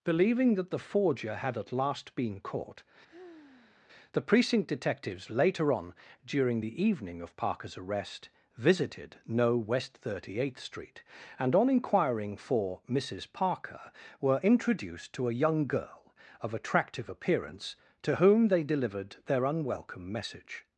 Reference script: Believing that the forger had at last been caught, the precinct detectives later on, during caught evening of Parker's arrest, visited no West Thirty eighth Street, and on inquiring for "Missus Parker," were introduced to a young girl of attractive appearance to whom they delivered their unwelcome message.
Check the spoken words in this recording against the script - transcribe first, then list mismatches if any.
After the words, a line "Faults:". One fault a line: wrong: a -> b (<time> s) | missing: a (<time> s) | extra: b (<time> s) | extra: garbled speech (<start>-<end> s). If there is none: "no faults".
Believing that the forger had at last been caught, the precinct detectives later on, during the evening of Parker's arrest, visited no West Thirty eighth Street, and on inquiring for "Missus Parker," were introduced to a young girl of attractive appearance to whom they delivered their unwelcome message.
Faults:
wrong: caught -> the (6.6 s)